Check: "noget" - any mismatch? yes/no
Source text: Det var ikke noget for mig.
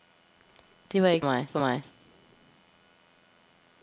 yes